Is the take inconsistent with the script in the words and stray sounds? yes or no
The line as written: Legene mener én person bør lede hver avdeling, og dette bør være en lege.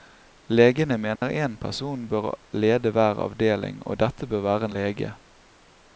yes